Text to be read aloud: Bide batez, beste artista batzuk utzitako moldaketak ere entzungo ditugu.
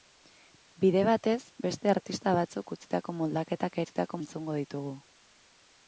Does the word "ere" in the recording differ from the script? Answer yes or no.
yes